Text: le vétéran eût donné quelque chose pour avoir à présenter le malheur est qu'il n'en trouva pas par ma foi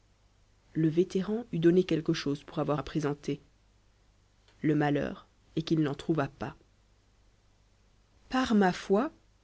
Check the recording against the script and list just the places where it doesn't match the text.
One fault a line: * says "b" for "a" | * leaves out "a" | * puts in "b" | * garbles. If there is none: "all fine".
all fine